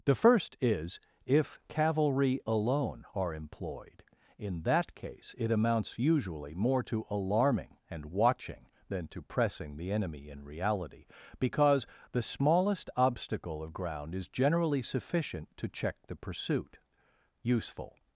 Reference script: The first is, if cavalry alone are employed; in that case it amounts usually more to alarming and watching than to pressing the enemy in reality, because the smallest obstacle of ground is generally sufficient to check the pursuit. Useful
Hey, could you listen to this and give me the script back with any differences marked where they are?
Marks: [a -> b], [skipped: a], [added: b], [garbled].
The first is, if cavalry alone are employed; in that case it amounts usually more to alarming and watching than to pressing the enemy in reality, because the smallest obstacle of ground is generally sufficient to check the pursuit. Useful